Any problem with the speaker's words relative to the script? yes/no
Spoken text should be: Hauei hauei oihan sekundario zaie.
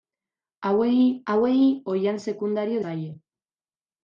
no